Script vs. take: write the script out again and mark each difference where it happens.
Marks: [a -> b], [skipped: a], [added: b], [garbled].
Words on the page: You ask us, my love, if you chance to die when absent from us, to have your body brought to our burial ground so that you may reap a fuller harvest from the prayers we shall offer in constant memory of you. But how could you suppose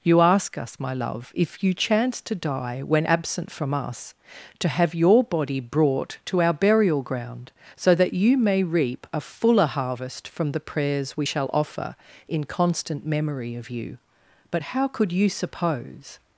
You ask us, my love, if you chance to die when absent from us, to have your body brought to our burial ground so that you may reap a fuller harvest from the prayers we shall offer in constant memory of you. But how could you suppose